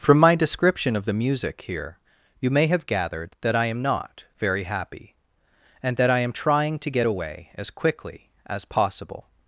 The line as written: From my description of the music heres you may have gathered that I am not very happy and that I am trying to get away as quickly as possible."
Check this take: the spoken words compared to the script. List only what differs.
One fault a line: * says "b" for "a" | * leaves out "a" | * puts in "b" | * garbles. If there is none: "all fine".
* says "here" for "heres"